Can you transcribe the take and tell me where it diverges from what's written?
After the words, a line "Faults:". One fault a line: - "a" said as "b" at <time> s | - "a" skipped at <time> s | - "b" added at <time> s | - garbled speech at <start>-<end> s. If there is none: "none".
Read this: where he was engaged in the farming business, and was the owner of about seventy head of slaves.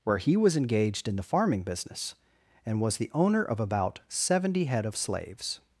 where he was engaged in the farming business, and was the owner of about seventy head of slaves.
Faults:
none